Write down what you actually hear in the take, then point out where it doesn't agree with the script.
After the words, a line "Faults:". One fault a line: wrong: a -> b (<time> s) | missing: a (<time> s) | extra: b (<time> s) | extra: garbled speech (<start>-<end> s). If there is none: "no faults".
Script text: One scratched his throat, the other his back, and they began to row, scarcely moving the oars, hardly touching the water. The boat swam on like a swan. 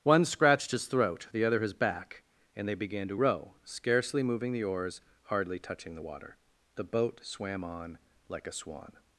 One scratched his throat, the other his back, and they began to row, scarcely moving the oars, hardly touching the water. The boat swam on like a swan.
Faults:
no faults